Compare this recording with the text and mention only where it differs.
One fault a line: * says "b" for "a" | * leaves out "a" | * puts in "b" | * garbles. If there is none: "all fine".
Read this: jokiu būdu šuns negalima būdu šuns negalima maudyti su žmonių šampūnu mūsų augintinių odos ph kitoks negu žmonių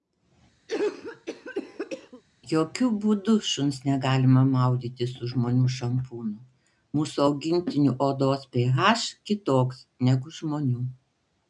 * leaves out "būdu šuns negalima"